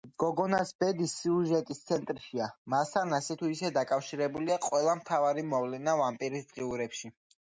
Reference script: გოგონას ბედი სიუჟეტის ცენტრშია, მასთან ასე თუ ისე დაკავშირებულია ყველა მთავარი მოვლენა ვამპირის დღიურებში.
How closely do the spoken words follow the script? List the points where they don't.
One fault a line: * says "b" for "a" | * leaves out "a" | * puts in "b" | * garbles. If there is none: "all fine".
all fine